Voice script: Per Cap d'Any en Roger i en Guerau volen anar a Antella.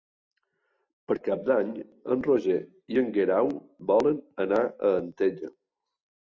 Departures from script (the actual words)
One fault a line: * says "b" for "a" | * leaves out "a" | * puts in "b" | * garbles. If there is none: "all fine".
all fine